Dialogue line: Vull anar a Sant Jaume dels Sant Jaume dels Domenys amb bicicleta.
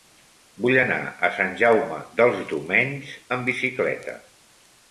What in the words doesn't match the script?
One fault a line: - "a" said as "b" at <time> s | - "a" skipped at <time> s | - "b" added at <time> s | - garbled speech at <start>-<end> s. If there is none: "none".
- "Sant Jaume dels" skipped at 2.4 s